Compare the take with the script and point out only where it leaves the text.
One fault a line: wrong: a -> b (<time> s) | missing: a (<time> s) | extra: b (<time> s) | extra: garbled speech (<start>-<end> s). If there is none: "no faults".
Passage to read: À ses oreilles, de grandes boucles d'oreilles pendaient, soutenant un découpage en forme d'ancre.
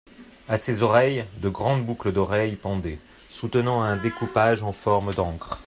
no faults